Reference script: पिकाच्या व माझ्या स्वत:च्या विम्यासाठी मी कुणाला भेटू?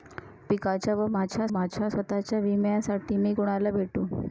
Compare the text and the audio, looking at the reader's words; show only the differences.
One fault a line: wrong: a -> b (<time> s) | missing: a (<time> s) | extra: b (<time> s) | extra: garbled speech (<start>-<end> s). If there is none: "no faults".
extra: माझ्या (1.5 s)